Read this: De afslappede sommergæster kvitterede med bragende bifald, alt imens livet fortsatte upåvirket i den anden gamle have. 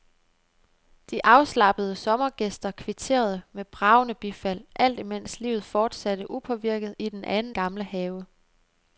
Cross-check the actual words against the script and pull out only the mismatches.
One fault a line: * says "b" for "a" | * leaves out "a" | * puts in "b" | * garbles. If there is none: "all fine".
all fine